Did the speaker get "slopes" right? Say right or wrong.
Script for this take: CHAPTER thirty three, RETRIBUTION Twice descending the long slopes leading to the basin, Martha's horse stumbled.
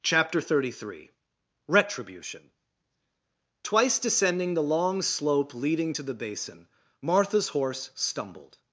wrong